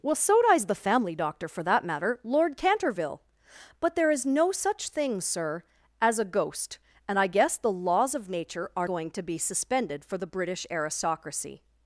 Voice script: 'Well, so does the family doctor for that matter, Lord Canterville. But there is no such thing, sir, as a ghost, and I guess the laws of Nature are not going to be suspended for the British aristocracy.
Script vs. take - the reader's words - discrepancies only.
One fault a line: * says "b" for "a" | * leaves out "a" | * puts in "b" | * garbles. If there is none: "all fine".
* leaves out "not"